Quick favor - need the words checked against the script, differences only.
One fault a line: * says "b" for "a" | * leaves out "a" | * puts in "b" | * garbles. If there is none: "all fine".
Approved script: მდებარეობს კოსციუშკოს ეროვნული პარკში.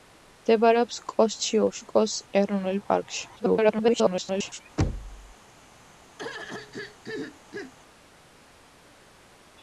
* garbles